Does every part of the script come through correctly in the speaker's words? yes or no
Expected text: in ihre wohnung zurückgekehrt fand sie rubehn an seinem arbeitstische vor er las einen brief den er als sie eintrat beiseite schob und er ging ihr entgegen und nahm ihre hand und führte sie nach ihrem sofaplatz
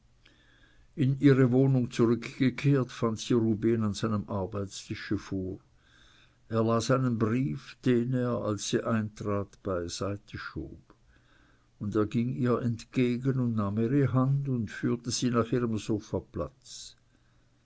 yes